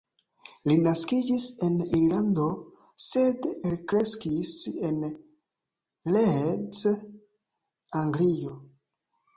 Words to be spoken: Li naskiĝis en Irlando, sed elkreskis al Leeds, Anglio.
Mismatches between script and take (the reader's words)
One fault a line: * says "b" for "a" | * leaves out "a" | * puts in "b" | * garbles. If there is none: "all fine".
* says "en" for "al"